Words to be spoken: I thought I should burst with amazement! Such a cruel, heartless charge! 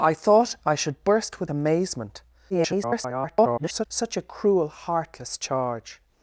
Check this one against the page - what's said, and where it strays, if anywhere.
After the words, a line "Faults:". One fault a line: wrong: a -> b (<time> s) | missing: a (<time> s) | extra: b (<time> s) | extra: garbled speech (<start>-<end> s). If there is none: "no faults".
I thought I should burst with amazement! [garbled] Such a cruel, heartless charge!
Faults:
extra: garbled speech (2.5-3.9 s)